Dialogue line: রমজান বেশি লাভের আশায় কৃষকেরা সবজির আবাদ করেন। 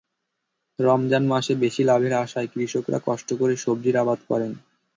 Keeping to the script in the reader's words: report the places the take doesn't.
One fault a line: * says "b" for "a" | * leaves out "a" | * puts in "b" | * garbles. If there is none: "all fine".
* puts in "মাসে"
* puts in "কষ্ট করে"